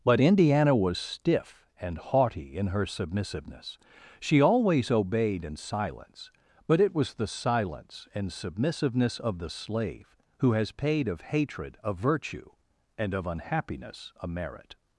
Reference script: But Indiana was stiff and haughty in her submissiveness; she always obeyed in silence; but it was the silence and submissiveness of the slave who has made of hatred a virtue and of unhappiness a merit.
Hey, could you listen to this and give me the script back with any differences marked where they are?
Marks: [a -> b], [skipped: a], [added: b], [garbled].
But Indiana was stiff and haughty in her submissiveness; she always obeyed in silence; but it was the silence and submissiveness of the slave who has [made -> paid] of hatred a virtue and of unhappiness a merit.